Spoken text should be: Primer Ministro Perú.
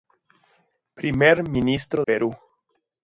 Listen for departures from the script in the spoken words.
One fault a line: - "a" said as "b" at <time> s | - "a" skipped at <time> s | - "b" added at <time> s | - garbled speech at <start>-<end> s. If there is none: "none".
none